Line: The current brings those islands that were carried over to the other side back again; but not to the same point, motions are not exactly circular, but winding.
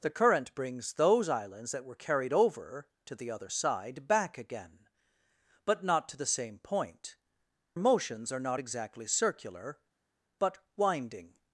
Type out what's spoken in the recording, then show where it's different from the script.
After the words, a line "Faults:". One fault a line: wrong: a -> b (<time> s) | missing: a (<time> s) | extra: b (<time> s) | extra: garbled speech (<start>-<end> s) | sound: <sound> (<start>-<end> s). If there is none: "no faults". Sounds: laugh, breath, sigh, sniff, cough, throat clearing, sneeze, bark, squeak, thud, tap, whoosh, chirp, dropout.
The current brings those islands that were carried over to the other side back again; but not to the same point, motions are not exactly circular, but winding.
Faults:
no faults